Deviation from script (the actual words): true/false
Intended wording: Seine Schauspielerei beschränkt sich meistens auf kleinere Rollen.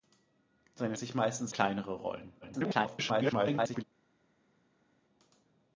true